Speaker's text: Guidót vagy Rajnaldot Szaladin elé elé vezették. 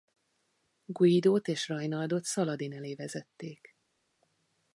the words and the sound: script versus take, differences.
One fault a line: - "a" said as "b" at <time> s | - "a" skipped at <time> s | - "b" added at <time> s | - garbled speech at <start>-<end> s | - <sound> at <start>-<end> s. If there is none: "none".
- "vagy" said as "és" at 1.5 s
- "elé" skipped at 3.0 s